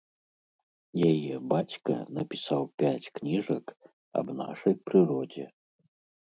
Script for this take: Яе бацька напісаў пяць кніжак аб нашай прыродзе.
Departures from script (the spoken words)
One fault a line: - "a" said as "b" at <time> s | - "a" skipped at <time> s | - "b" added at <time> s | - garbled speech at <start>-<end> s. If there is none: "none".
none